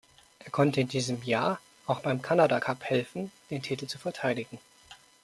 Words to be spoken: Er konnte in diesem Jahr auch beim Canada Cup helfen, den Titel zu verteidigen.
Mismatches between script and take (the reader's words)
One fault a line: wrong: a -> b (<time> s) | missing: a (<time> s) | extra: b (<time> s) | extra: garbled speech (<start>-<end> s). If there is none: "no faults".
no faults